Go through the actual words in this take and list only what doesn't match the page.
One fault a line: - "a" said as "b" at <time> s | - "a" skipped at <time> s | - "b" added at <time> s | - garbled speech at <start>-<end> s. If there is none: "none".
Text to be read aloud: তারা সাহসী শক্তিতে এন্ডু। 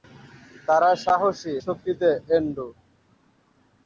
none